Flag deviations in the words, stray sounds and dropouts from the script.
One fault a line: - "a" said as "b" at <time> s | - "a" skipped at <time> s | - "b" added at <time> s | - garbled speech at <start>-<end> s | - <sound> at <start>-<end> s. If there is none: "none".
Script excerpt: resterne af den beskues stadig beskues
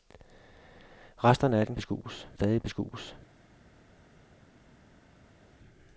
none